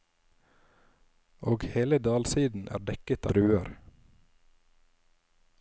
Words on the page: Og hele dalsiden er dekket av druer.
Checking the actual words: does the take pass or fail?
fail